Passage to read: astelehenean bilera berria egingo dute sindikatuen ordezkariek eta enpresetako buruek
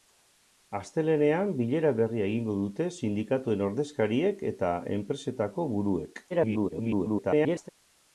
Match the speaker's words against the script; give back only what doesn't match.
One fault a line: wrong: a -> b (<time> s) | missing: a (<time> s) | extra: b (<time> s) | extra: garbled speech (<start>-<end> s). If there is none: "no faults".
extra: garbled speech (6.3-7.7 s)